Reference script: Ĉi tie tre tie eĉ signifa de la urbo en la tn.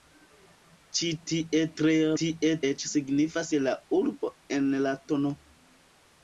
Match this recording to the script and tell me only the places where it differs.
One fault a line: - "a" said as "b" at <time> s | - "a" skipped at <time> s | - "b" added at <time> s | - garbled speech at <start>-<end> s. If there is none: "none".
none